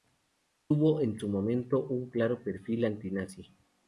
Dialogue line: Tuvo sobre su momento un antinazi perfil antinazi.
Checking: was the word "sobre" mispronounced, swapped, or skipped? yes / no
yes